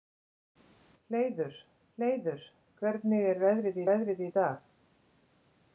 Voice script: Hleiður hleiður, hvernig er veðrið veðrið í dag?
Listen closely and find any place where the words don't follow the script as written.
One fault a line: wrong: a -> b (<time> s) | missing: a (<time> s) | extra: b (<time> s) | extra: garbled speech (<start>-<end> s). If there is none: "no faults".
no faults